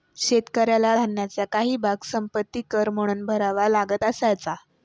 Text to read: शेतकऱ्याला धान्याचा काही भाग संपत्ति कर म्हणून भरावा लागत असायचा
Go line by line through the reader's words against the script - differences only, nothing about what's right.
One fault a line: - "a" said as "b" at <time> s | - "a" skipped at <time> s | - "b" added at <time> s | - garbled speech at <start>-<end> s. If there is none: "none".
none